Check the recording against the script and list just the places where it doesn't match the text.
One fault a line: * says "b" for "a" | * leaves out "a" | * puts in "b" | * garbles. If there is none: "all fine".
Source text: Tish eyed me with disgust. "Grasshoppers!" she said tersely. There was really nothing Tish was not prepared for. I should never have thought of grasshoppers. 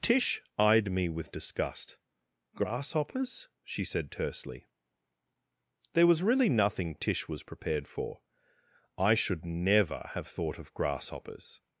* leaves out "not"